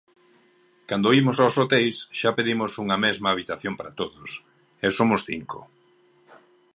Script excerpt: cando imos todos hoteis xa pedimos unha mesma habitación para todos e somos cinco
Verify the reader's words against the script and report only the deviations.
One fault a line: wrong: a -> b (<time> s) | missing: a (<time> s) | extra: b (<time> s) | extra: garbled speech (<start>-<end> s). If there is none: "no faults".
wrong: todos -> aos (1.4 s)